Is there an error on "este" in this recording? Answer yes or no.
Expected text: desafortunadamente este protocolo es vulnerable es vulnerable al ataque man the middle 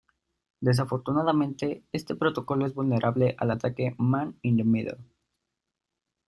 no